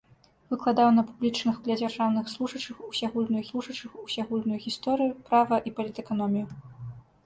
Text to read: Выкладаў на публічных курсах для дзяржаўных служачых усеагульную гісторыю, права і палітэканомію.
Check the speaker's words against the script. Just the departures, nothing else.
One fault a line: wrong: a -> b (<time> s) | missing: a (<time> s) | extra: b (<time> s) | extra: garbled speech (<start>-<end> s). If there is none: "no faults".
missing: курсах (1.6 s)
extra: служачых усеагульную (3.5 s)